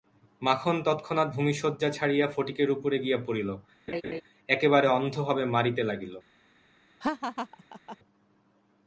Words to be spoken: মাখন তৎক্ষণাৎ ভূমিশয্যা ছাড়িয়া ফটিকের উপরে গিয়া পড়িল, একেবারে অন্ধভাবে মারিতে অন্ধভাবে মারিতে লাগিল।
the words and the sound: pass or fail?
fail